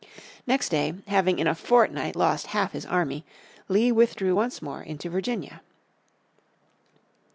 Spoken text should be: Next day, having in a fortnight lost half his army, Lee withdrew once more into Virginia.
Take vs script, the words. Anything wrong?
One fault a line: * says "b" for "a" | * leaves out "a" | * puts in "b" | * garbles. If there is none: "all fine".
all fine